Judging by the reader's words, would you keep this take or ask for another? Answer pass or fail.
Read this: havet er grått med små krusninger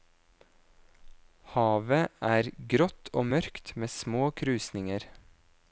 fail